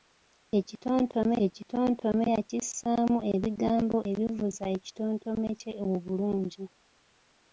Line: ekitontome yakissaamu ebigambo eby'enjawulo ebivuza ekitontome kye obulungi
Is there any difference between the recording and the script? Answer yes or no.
yes